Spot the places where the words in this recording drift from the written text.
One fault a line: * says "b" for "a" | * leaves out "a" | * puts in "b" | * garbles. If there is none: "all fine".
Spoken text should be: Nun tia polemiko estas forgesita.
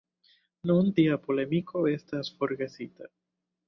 all fine